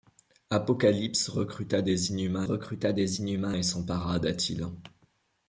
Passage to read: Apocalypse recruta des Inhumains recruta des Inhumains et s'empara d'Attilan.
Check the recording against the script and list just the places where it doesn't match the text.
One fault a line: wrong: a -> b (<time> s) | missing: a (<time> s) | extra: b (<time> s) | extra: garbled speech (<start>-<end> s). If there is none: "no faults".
no faults